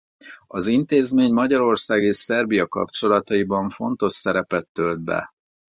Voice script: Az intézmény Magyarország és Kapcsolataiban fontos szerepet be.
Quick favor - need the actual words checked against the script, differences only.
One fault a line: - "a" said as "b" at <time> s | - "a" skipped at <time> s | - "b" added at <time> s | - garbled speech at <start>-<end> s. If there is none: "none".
- "Szerbia" added at 2.2 s
- "tölt" added at 4.7 s